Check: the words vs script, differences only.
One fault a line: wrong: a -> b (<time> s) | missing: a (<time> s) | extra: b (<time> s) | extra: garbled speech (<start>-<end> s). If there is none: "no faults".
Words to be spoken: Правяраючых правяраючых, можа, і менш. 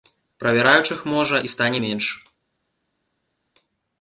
missing: правяраючых (1.1 s)
extra: стане (1.5 s)